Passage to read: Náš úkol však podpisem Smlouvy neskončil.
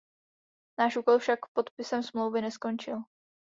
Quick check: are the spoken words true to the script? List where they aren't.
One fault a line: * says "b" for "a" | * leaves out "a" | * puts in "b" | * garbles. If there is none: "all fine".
all fine